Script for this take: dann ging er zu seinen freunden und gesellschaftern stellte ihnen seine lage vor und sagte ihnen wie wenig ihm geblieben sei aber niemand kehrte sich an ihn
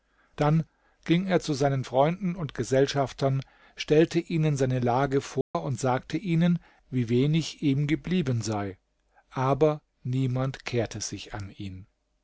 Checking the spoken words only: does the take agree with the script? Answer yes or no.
yes